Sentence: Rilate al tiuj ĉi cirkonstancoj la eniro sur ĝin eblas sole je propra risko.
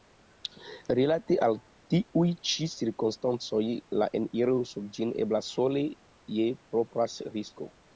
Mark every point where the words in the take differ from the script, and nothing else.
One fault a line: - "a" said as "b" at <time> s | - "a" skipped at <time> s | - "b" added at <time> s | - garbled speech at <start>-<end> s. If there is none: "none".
none